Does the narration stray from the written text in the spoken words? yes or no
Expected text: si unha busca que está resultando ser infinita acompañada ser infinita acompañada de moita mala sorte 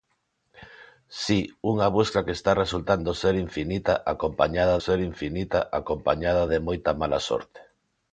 no